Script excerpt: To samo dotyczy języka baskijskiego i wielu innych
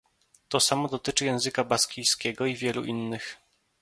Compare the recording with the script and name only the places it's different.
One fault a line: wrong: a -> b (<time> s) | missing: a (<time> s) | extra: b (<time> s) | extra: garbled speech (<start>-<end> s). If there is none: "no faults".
no faults